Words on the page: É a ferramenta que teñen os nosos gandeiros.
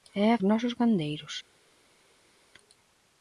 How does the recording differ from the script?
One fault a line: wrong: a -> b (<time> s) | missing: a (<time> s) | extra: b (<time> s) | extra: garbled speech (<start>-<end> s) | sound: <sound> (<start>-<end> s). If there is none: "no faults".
missing: ferramenta que teñen (0.4 s)